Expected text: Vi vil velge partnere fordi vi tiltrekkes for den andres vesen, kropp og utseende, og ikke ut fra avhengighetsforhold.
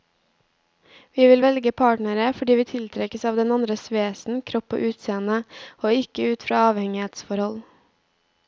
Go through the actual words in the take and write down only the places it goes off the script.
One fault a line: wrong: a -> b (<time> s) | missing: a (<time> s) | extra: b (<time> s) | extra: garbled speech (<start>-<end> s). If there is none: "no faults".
wrong: for -> av (3.3 s)